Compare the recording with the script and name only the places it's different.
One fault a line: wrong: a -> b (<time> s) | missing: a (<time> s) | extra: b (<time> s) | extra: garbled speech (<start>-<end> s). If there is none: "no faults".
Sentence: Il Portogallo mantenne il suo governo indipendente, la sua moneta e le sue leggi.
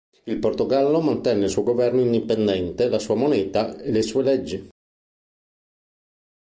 no faults